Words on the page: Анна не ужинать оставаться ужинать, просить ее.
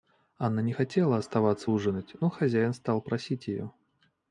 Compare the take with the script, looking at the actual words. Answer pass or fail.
fail